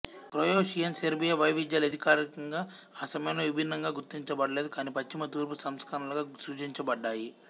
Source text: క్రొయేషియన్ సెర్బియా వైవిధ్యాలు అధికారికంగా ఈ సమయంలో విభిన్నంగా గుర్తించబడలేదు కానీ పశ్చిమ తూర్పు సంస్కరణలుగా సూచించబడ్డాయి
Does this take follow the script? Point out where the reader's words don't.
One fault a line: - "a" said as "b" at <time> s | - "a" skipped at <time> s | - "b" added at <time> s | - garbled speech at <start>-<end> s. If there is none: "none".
- "ఈ" said as "ఆ" at 3.0 s